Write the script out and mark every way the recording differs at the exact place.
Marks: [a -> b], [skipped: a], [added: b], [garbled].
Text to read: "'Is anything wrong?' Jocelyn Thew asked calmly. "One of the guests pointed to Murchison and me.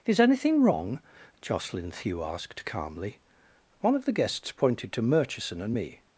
"'Is anything wrong?' Jocelyn Thew asked calmly. "One of the guests pointed to Murchison and me.